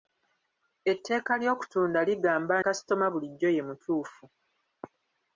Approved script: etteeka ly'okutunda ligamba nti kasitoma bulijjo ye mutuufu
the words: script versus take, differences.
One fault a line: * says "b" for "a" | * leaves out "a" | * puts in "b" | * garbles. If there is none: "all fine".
* leaves out "nti"